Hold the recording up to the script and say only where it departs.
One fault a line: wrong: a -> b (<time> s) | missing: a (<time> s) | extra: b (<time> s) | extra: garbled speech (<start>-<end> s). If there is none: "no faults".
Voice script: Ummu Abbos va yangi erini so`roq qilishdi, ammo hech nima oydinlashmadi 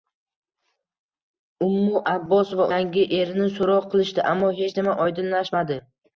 no faults